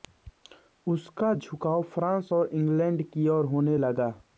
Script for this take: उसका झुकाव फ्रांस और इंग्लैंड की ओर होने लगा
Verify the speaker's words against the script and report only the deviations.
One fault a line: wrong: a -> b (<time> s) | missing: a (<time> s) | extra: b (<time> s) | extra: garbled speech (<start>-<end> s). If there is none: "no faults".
no faults